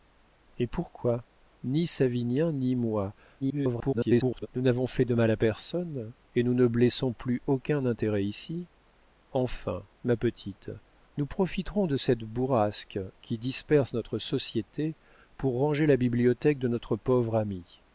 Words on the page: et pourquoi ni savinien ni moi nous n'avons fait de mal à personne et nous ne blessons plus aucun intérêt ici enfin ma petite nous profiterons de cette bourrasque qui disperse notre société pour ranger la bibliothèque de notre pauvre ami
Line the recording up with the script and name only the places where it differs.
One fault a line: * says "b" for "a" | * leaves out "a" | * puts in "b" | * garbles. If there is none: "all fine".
* garbles